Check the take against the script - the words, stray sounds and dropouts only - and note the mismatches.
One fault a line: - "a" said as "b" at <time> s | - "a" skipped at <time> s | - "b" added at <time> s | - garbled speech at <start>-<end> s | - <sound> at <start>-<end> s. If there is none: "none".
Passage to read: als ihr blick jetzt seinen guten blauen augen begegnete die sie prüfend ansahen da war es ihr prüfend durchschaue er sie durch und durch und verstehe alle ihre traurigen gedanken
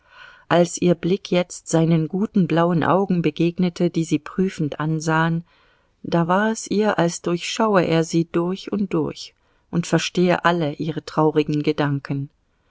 - "prüfend" said as "als" at 7.0 s